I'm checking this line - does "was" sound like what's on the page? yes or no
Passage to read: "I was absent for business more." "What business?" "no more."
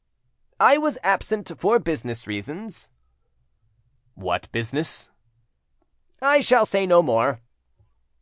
yes